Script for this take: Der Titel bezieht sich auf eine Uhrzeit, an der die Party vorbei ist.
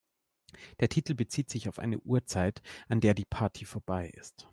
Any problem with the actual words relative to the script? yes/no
no